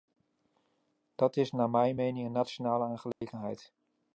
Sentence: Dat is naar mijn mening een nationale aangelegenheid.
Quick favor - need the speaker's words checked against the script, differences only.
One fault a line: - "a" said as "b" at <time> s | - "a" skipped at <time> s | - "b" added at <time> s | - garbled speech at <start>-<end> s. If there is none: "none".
none